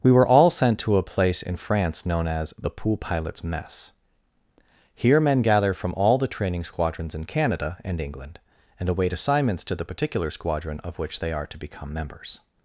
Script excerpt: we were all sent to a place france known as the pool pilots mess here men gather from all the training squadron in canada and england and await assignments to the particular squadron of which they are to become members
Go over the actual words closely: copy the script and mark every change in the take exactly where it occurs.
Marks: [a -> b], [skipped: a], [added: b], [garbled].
we were all sent to a place [added: in] france known as the pool pilots mess here men gather from all the training [squadron -> squadrons] in canada and england and await assignments to the particular squadron of which they are to become members